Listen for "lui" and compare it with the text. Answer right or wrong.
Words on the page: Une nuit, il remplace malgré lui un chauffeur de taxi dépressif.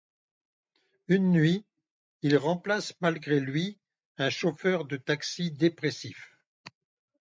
right